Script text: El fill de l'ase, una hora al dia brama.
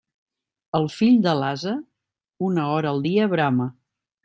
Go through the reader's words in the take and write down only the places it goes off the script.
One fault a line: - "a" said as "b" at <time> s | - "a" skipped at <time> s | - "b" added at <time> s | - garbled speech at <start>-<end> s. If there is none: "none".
none